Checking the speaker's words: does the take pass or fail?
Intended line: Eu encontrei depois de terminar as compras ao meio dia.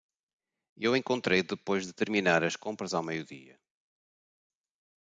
pass